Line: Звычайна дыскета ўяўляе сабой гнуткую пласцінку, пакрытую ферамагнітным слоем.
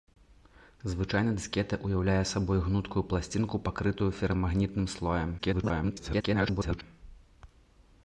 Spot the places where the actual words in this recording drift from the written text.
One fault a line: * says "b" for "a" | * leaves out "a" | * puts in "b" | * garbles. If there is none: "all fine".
* garbles